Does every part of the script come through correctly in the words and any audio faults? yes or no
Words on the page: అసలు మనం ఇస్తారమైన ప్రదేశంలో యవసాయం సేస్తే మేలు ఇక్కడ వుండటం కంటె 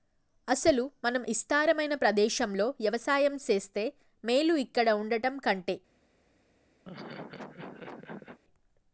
no